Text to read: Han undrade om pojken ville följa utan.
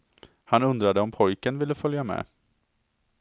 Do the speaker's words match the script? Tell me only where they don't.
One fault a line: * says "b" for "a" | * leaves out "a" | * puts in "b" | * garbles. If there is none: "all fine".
* says "med" for "utan"